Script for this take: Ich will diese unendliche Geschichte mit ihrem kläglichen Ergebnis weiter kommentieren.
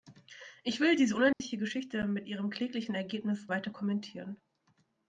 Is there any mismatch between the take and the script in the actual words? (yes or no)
no